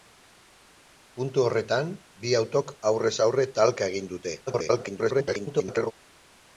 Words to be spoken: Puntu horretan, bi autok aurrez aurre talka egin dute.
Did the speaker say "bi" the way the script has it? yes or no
yes